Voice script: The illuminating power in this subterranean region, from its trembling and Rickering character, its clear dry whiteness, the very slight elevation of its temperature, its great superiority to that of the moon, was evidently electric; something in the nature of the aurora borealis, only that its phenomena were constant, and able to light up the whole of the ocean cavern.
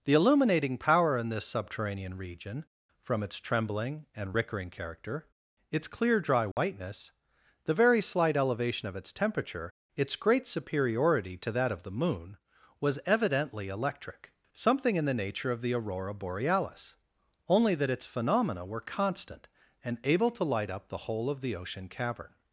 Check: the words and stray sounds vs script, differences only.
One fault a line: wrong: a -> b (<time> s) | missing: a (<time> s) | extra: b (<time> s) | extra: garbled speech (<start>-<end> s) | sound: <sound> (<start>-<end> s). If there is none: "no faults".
sound: dropout (6.5-6.6 s)